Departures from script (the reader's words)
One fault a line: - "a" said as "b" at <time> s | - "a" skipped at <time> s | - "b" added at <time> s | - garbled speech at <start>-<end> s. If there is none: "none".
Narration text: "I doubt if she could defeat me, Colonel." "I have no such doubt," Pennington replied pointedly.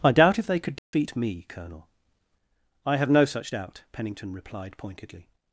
- "she" said as "they" at 0.5 s